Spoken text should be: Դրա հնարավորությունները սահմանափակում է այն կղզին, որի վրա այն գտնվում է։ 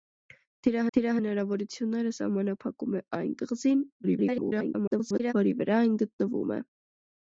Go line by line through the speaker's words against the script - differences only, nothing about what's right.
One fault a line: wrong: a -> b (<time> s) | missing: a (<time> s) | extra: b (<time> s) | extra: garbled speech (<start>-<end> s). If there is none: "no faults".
extra: դրա (1.0 s)
extra: garbled speech (4.0-5.3 s)